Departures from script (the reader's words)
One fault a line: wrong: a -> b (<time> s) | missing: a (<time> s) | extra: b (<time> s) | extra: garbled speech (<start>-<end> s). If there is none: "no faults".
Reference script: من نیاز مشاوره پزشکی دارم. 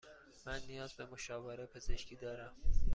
extra: به (0.9 s)